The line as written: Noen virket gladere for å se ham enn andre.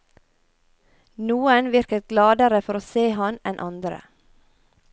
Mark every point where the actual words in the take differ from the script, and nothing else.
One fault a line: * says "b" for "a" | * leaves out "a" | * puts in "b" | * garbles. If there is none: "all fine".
all fine